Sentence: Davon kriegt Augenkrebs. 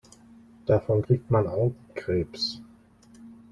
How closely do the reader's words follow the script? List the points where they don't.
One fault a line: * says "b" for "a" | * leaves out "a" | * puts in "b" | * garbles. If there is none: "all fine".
* puts in "man"